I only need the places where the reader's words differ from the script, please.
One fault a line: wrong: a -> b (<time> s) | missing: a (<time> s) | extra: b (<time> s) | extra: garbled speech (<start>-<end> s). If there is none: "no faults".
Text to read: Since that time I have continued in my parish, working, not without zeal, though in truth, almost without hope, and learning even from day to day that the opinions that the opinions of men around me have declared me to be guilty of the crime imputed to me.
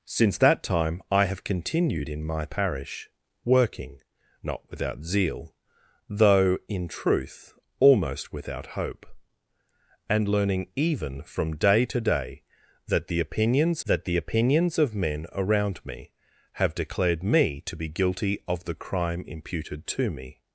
no faults